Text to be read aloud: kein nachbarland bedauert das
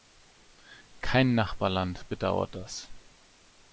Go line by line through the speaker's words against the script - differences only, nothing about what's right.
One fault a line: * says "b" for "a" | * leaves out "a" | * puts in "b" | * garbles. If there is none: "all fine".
all fine